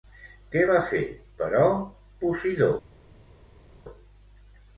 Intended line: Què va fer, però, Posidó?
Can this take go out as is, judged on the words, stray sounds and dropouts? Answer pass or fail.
pass